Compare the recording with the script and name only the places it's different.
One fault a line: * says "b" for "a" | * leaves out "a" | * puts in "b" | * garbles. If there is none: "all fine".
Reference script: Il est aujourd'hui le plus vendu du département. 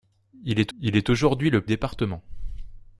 * puts in "il est"
* leaves out "plus vendu du"